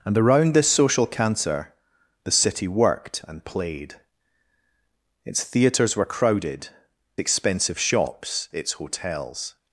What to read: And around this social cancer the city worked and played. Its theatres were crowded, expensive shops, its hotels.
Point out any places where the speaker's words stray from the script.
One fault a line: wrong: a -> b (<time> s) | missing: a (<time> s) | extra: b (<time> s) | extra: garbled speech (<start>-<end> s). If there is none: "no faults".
no faults